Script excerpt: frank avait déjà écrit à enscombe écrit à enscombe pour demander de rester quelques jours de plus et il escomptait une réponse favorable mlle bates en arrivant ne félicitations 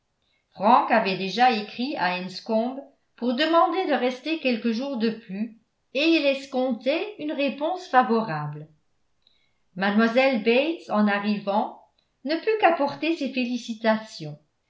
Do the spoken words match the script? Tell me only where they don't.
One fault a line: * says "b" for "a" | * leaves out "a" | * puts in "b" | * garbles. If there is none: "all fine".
* leaves out "écrit à enscombe"
* puts in "put qu'apporter ses"